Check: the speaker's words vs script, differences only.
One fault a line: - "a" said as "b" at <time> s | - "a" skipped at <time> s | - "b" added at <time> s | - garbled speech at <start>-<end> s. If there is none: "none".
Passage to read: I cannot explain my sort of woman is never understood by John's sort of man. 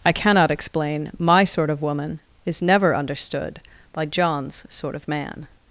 none